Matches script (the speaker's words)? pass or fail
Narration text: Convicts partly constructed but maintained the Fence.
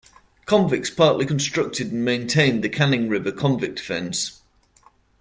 fail